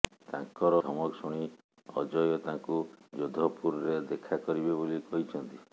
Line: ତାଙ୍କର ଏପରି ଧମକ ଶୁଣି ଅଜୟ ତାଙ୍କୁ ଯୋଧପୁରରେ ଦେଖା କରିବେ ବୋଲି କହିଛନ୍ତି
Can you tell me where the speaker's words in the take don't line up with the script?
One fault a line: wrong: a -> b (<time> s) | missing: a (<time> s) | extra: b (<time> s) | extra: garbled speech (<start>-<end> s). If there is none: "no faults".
missing: ଏପରି (0.8 s)